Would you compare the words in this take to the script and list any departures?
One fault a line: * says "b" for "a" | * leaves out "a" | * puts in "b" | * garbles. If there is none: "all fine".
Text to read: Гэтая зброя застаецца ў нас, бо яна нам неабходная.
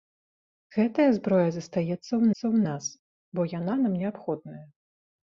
* puts in "ў"